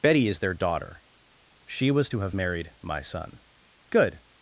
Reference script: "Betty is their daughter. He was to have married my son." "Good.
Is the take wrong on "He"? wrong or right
wrong